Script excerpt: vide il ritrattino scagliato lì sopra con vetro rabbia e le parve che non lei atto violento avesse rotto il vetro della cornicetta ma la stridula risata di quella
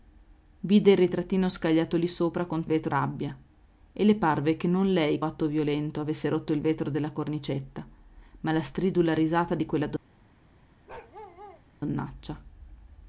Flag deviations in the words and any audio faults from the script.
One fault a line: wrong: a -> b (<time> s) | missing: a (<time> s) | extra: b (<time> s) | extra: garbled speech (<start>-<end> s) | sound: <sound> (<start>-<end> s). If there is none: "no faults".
sound: bark (10.9-11.6 s)